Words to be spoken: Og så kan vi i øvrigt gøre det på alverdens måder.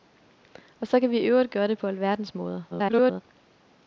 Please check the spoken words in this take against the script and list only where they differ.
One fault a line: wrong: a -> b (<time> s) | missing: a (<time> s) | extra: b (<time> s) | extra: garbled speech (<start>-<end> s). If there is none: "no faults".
extra: garbled speech (2.7-3.2 s)